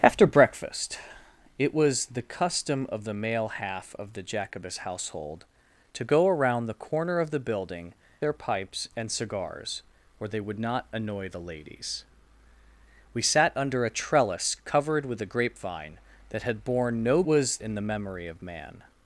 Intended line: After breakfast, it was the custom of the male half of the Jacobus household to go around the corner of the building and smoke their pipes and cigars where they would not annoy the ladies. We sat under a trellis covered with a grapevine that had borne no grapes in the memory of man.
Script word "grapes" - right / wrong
wrong